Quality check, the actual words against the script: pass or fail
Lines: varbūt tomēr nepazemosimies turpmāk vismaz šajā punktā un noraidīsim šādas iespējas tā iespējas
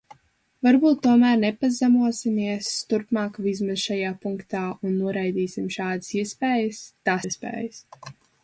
pass